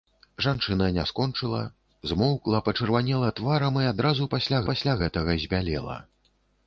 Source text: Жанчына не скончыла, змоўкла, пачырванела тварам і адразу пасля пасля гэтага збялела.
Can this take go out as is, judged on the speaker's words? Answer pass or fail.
pass